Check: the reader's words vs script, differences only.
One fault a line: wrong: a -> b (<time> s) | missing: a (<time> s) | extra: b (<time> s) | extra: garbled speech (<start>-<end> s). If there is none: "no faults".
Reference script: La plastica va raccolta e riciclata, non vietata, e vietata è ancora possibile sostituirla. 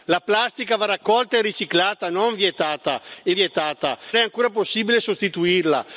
no faults